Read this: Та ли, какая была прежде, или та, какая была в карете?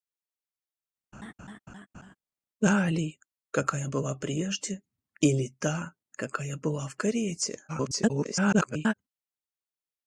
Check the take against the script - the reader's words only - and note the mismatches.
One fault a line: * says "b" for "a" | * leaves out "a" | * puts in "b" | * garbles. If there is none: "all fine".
* garbles